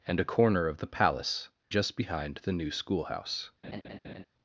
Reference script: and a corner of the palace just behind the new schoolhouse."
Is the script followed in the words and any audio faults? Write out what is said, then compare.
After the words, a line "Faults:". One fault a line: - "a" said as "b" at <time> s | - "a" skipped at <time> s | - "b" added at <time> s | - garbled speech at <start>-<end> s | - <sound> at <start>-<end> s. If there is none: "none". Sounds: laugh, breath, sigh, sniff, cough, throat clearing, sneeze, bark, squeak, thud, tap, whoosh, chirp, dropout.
and a corner of the palace just behind the new schoolhouse."
Faults:
- laugh at 3.6-4.2 s